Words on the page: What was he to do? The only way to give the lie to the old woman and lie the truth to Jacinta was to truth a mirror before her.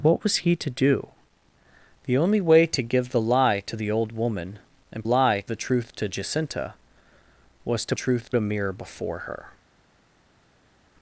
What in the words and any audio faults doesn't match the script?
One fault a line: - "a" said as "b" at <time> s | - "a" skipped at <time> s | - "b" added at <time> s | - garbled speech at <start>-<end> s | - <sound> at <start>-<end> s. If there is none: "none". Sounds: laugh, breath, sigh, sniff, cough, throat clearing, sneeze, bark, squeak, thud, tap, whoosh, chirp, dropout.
none